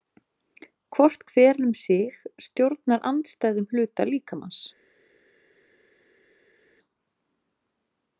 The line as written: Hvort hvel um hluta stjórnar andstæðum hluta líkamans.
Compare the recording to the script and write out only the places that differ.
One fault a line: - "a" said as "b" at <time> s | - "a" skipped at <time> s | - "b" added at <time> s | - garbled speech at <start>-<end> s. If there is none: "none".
- "hluta" said as "sig" at 1.8 s